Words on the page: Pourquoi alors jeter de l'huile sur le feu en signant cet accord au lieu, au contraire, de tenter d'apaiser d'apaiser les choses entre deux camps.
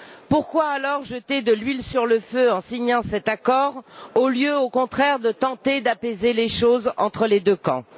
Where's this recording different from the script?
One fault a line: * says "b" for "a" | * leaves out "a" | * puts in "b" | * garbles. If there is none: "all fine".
* leaves out "d'apaiser"
* puts in "les"